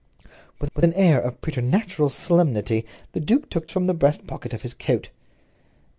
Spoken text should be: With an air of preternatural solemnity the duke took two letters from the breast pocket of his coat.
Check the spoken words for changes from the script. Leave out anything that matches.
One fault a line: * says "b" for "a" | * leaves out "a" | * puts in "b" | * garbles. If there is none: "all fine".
* puts in "with"
* leaves out "two letters"